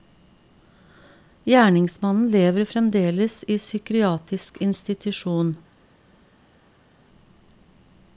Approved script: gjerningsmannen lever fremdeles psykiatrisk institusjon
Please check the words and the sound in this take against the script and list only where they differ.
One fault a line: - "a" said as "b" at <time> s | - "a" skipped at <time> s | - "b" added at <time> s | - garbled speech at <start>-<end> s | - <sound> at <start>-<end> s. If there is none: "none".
- "i" added at 3.5 s